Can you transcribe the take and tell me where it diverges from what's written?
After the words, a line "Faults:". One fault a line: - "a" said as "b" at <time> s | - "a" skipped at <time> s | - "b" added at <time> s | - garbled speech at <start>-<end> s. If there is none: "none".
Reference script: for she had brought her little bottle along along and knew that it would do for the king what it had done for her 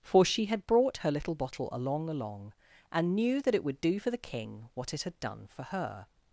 for she had brought her little bottle along along and knew that it would do for the king what it had done for her
Faults:
none